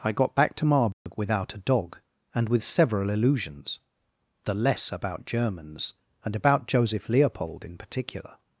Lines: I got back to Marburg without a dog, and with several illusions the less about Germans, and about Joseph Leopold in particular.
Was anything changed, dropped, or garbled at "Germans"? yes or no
no